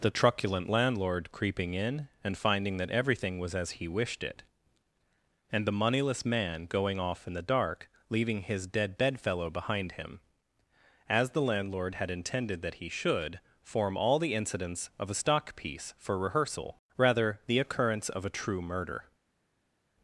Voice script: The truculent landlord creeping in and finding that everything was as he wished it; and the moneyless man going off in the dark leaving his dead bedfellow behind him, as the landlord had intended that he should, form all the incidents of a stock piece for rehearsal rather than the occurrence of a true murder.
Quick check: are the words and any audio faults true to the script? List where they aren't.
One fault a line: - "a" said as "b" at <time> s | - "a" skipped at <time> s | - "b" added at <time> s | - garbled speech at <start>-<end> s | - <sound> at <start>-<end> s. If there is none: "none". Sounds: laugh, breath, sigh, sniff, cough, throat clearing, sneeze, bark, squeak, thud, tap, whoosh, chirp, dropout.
- "than" skipped at 17.4 s